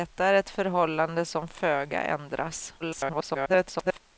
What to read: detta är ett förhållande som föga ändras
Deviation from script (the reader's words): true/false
true